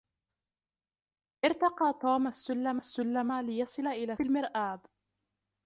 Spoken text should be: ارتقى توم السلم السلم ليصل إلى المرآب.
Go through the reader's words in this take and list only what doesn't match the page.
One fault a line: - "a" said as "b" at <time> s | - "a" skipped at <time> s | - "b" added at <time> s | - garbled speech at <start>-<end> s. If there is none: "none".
none